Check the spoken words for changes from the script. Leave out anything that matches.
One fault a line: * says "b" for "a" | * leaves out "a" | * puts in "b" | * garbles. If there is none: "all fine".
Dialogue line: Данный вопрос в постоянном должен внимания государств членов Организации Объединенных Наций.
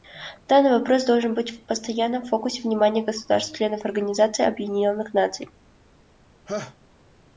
* puts in "должен быть"
* says "фокусе" for "должен"